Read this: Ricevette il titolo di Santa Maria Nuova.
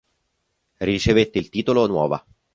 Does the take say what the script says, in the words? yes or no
no